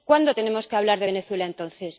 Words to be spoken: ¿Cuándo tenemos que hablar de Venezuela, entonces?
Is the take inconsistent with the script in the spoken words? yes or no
no